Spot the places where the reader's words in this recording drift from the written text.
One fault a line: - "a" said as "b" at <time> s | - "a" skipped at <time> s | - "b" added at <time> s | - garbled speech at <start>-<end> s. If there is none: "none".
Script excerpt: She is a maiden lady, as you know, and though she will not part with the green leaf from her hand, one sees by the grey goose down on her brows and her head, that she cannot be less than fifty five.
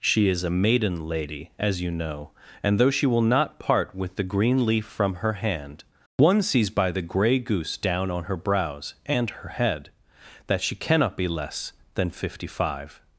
none